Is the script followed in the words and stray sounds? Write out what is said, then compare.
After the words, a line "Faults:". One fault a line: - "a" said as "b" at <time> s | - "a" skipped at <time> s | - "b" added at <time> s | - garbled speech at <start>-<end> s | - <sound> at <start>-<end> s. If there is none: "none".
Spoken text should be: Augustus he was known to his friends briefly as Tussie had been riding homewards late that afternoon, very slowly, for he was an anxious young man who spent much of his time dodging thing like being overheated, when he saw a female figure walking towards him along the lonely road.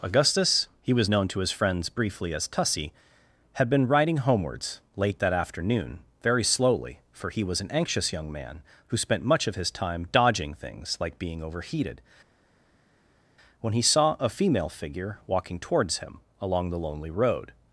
Augustus he was known to his friends briefly as Tussie had been riding homewards late that afternoon, very slowly, for he was an anxious young man who spent much of his time dodging things like being overheated, when he saw a female figure walking towards him along the lonely road.
Faults:
- "thing" said as "things" at 10.5 s